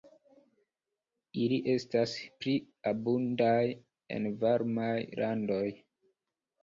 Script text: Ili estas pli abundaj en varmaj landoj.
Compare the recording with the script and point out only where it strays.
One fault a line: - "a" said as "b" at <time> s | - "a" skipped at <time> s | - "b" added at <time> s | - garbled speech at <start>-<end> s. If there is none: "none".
none